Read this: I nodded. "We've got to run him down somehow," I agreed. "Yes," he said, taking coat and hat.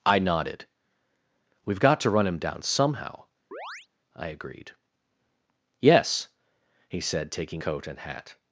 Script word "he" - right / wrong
right